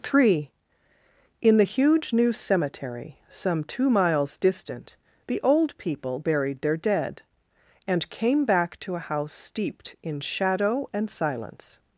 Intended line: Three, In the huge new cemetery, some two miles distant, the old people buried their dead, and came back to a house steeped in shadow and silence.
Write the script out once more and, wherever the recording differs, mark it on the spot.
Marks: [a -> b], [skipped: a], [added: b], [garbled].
Three, In the huge new cemetery, some two miles distant, the old people buried their dead, and came back to a house steeped in shadow and silence.